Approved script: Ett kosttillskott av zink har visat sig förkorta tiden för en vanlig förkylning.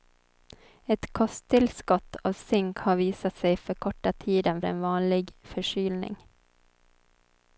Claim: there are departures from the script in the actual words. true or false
true